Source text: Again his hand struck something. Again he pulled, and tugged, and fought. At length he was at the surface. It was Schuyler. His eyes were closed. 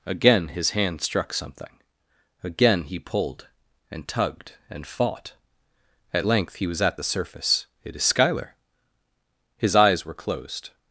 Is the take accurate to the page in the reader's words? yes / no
no